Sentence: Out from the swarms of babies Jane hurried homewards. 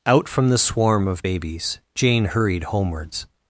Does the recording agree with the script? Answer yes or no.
no